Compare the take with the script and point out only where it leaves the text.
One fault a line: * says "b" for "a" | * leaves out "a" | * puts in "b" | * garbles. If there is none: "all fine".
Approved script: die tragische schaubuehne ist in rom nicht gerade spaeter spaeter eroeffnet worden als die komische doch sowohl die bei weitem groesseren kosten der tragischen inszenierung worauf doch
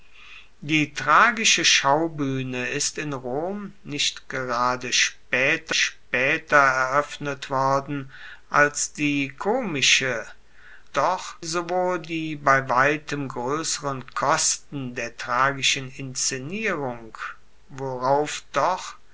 all fine